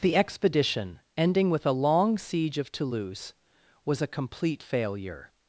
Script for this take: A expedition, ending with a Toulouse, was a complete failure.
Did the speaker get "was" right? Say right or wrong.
right